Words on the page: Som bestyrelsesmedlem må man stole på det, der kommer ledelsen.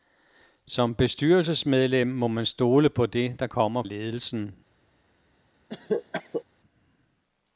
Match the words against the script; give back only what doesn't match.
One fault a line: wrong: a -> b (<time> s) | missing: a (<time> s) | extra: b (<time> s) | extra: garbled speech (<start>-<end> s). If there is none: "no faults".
no faults